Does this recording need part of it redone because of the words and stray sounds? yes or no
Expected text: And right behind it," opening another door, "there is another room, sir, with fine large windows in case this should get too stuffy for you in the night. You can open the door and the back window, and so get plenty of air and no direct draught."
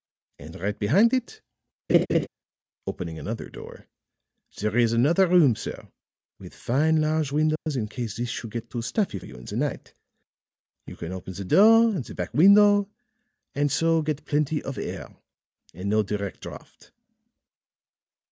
yes